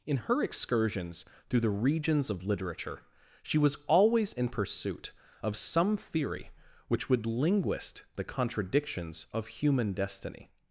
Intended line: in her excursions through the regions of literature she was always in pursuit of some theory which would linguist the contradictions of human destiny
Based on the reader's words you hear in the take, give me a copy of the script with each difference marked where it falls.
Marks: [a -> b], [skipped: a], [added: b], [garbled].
in her excursions through the regions of literature she was always in pursuit of some theory which would linguist the contradictions of human destiny